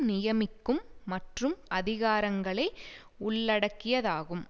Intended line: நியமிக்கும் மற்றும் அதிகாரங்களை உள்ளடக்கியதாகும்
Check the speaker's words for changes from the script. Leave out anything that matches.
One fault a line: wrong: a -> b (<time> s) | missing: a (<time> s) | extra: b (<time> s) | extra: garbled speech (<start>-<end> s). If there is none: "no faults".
no faults